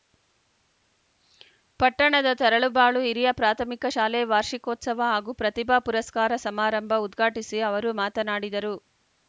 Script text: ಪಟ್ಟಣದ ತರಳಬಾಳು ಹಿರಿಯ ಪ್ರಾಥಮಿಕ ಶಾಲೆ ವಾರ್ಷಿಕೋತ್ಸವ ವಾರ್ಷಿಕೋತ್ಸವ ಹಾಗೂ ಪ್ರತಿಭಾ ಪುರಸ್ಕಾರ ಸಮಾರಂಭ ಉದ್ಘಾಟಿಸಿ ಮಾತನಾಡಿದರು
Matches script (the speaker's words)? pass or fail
fail